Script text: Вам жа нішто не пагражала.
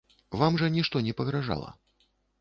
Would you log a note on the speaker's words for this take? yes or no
no